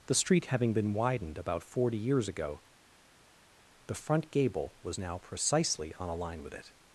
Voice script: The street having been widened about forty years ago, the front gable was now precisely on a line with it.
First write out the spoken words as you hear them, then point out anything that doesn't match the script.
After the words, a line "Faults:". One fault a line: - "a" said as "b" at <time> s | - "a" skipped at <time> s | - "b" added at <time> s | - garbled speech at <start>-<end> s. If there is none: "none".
The street having been widened about forty years ago, the front gable was now precisely on a line with it.
Faults:
none